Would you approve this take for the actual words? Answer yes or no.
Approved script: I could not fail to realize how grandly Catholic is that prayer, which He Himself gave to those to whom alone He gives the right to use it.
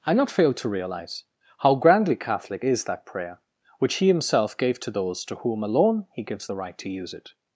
no